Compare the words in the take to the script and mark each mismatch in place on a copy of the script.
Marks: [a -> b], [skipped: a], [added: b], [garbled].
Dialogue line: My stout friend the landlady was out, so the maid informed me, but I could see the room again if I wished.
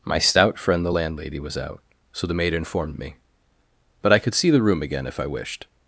My stout friend the landlady was out, so the maid informed me, but I could see the room again if I wished.